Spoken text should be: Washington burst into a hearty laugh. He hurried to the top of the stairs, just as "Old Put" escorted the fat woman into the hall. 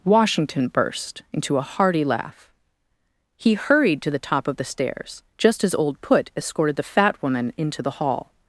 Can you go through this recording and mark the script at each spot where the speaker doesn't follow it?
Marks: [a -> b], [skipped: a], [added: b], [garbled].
Washington burst into a hearty laugh. He hurried to the top of the stairs, just as "Old Put" escorted the fat woman into the hall.